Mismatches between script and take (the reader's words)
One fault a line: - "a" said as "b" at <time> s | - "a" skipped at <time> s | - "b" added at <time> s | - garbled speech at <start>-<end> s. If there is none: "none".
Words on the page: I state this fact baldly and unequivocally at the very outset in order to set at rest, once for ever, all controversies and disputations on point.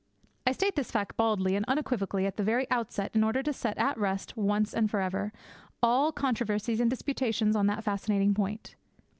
- "and" added at 4.7 s
- "that fascinating" added at 7.7 s